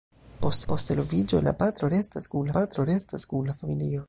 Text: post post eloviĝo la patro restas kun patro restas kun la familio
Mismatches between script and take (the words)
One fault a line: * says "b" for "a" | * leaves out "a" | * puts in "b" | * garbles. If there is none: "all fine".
all fine